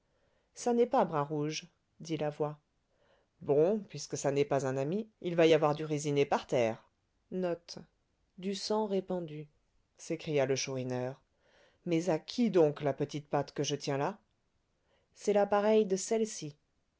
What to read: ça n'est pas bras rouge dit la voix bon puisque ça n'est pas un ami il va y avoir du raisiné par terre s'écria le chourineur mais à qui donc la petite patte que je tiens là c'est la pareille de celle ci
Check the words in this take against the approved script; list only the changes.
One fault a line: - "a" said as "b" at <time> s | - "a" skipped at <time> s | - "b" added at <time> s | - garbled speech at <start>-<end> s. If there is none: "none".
none